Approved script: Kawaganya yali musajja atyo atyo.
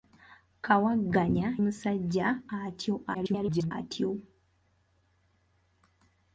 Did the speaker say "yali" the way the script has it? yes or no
no